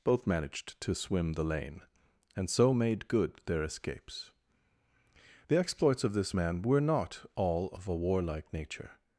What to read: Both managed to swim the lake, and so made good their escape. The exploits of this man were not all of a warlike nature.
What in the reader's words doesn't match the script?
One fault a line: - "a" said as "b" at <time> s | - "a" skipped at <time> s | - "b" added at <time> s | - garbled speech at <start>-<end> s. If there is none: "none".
- "lake" said as "lane" at 1.4 s
- "escape" said as "escapes" at 3.6 s